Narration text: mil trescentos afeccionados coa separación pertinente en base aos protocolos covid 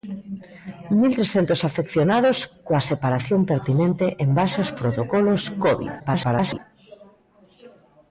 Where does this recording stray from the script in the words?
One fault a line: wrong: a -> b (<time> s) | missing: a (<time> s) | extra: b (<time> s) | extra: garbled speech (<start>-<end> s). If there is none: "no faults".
extra: garbled speech (6.0-6.6 s)